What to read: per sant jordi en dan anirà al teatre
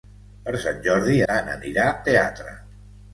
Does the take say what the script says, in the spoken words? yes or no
no